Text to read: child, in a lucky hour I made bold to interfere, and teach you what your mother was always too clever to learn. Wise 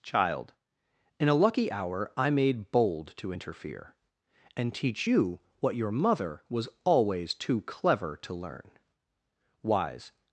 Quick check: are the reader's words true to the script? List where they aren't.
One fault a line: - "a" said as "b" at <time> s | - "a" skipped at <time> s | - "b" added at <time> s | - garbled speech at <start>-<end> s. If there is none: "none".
none